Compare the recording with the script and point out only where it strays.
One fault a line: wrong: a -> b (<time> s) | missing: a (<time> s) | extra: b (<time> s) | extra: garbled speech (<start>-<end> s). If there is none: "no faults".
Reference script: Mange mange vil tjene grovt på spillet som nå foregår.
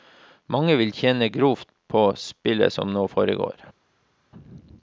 missing: mange (0.8 s)